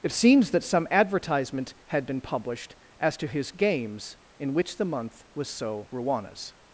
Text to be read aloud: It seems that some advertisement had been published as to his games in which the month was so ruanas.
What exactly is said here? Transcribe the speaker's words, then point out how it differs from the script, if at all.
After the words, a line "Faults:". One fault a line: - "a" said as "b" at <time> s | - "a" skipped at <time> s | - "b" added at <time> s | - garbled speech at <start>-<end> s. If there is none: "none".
It seems that some advertisement had been published as to his games in which the month was so ruanas.
Faults:
none